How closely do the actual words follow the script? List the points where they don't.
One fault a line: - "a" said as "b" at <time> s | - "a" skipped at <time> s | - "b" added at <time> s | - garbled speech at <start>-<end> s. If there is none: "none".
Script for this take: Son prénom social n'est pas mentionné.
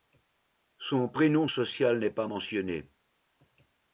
none